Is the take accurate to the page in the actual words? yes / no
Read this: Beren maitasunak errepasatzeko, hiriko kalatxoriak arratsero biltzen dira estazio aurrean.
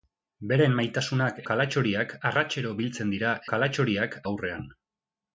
no